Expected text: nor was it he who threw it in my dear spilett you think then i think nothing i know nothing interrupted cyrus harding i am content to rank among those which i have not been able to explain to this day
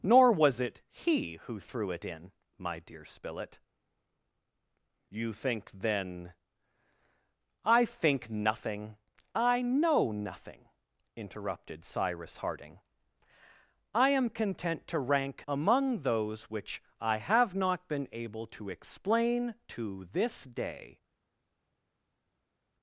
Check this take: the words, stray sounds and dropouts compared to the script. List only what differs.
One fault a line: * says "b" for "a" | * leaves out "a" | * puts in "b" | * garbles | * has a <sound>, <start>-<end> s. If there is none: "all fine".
all fine